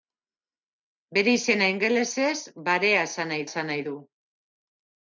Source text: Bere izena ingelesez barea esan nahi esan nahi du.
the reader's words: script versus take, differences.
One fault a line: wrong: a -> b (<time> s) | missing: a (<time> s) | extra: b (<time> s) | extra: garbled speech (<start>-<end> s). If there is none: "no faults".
no faults